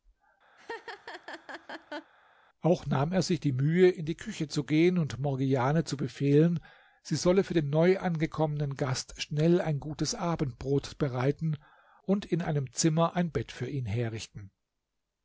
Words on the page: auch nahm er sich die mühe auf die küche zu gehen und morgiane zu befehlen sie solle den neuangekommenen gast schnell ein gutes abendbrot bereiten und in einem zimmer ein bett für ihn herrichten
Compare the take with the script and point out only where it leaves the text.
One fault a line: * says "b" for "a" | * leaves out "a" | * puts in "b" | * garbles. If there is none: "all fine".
* says "in" for "auf"
* puts in "für"